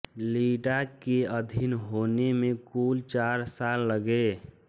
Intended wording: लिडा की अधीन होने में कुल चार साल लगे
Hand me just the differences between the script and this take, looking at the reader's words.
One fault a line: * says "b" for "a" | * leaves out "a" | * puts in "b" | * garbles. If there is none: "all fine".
* says "के" for "की"